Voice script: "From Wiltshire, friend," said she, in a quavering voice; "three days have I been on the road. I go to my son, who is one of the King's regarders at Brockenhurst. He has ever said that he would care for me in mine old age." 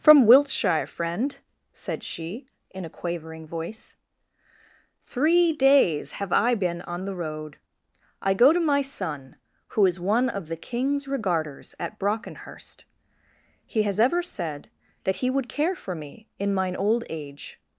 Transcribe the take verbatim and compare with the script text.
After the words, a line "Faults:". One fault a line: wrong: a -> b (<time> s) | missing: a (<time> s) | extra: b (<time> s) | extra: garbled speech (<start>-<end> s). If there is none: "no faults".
"From Wiltshire, friend," said she, in a quavering voice; "three days have I been on the road. I go to my son, who is one of the King's regarders at Brockenhurst. He has ever said that he would care for me in mine old age."
Faults:
no faults